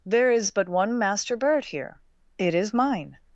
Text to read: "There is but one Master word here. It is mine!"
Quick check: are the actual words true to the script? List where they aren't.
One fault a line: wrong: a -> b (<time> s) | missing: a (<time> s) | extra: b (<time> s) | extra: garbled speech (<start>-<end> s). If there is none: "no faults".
wrong: word -> bird (1.4 s)